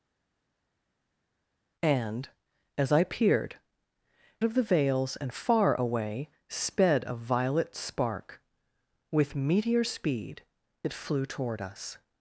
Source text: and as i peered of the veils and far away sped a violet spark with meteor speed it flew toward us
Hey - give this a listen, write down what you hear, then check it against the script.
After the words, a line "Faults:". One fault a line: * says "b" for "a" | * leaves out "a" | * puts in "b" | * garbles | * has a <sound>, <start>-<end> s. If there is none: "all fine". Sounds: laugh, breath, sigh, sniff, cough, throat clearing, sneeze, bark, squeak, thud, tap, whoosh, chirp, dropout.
and as i peered of the veils and far away sped a violet spark with meteor speed it flew toward us
Faults:
all fine